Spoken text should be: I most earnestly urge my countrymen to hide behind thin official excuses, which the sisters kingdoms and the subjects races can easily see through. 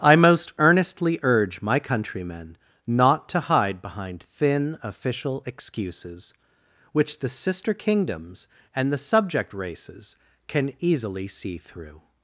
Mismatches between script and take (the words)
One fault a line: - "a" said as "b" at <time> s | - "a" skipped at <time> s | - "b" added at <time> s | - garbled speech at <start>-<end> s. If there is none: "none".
- "not" added at 2.9 s
- "sisters" said as "sister" at 7.3 s
- "subjects" said as "subject" at 9.0 s